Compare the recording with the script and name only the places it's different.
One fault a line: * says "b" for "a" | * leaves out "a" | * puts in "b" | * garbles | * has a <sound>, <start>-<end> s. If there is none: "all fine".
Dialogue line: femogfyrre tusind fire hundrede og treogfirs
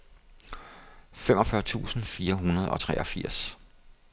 all fine